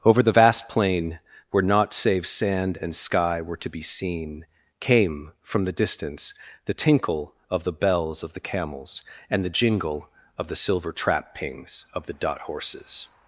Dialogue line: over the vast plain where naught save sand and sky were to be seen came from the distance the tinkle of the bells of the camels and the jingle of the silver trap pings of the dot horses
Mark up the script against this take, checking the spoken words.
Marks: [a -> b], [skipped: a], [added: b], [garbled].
over the vast plain where naught save sand and sky were to be seen came from the distance the tinkle of the bells of the camels and the jingle of the silver trap pings of the dot horses